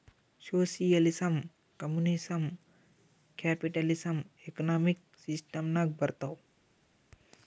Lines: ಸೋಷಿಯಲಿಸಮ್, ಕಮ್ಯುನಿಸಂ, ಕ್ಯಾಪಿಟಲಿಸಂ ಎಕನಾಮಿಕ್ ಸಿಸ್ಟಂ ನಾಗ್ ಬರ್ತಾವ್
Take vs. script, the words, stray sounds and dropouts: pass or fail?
pass